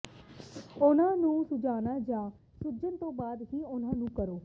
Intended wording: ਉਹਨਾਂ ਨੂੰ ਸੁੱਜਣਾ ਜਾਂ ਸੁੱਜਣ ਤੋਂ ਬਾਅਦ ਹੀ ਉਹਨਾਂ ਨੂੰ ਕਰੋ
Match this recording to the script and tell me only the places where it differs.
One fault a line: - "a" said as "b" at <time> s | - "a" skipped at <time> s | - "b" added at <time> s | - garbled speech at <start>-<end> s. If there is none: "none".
none